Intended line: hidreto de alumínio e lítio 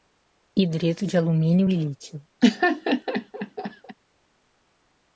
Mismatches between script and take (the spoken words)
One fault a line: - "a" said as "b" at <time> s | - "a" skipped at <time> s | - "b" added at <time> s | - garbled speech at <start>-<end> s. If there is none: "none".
none